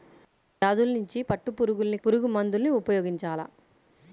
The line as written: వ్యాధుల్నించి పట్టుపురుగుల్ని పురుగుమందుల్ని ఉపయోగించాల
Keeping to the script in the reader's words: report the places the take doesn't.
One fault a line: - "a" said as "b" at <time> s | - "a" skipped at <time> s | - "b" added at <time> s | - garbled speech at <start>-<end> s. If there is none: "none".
none